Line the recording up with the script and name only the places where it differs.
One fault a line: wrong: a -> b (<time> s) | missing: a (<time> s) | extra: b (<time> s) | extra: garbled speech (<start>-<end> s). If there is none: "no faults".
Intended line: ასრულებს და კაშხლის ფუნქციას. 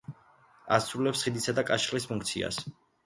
extra: ხიდისა (1.2 s)